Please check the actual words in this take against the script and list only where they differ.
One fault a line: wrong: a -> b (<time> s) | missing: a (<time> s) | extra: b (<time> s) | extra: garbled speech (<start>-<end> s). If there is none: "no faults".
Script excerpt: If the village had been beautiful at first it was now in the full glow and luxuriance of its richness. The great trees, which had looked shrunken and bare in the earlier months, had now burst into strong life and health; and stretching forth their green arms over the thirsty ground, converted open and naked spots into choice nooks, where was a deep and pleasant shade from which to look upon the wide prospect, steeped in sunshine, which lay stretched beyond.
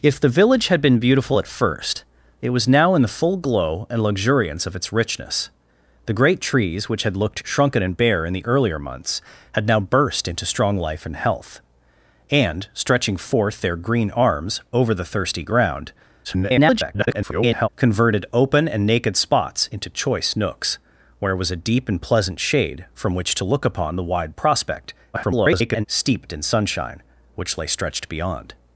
extra: garbled speech (16.2-17.7 s)
extra: garbled speech (25.1-25.9 s)